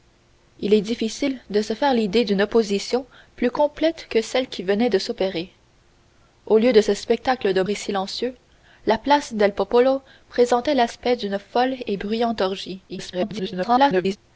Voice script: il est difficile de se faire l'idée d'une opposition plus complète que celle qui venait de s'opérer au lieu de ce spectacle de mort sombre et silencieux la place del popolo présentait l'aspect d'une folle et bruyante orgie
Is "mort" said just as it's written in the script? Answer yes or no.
no